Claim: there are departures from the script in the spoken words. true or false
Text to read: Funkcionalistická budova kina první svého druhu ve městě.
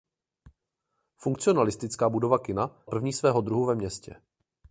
false